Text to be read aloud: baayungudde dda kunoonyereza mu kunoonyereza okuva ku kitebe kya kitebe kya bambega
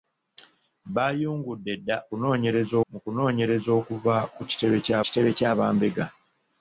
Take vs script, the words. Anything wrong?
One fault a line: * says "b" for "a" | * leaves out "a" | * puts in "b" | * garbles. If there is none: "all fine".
all fine